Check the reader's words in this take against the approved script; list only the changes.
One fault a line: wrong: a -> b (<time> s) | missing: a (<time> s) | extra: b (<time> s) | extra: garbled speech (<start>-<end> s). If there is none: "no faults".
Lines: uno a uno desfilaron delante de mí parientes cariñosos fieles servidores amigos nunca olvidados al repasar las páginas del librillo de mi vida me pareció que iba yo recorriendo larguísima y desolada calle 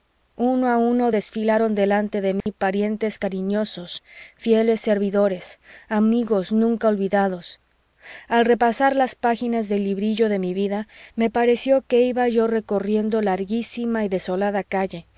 no faults